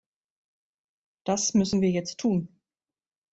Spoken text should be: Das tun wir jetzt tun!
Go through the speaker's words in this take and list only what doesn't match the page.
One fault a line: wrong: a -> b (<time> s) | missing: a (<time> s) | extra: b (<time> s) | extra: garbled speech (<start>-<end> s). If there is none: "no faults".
wrong: tun -> müssen (1.5 s)